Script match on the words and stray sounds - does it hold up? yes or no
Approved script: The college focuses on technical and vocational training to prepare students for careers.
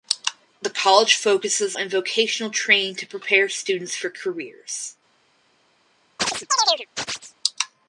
no